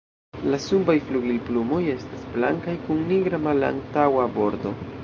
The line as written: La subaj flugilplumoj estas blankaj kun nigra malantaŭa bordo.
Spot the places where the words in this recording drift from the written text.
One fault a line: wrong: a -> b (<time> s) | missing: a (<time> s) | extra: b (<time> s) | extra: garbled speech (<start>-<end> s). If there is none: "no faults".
no faults